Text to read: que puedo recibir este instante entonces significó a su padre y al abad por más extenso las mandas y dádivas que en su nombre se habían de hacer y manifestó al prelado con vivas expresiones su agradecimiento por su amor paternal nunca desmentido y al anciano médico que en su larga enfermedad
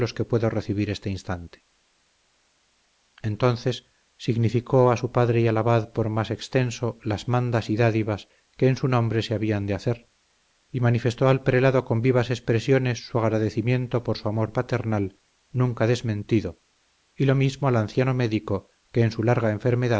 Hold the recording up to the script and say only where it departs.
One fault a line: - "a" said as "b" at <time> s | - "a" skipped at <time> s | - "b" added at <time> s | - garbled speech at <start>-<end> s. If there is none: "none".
- "lo mismo" added at 17.2 s